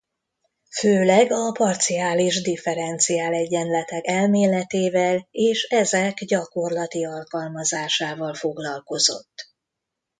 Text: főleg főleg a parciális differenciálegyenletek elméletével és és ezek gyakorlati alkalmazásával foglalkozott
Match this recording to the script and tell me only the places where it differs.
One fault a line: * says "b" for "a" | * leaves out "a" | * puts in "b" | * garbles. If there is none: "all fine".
* leaves out "főleg"
* leaves out "és"